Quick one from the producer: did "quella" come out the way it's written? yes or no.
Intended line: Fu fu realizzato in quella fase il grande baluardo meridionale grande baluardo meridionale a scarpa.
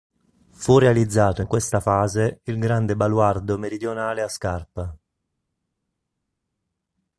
no